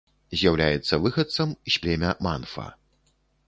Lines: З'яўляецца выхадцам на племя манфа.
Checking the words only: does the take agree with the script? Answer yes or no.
no